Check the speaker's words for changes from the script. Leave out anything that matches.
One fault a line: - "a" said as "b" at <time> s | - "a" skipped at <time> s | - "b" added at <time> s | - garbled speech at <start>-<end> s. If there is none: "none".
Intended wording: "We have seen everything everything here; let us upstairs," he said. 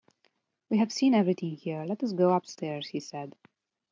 - "everything" skipped at 1.6 s
- "go" added at 2.1 s